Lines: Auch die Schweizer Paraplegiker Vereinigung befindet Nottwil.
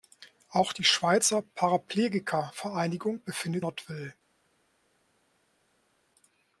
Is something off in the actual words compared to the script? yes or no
no